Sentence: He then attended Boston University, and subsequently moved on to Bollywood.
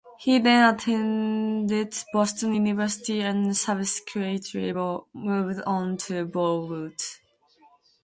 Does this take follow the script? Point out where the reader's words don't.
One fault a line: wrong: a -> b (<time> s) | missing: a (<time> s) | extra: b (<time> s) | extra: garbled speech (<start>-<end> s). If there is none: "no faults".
no faults